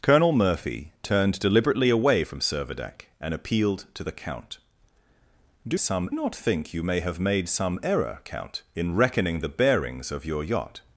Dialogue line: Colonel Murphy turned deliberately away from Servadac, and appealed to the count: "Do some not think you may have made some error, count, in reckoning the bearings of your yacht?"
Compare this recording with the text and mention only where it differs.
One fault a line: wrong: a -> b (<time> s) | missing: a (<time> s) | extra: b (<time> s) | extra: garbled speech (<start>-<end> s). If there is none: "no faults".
no faults